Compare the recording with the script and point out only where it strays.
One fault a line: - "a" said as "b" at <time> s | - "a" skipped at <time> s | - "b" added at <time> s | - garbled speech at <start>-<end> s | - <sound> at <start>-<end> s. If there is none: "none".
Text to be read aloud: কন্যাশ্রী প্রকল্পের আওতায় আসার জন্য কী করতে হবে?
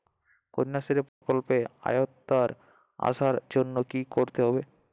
- dropout at 1.1-1.2 s